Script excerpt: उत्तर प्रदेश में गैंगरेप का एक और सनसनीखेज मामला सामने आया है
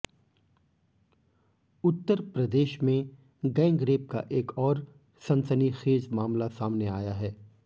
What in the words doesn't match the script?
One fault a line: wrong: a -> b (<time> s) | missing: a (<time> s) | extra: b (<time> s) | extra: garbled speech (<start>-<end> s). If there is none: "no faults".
no faults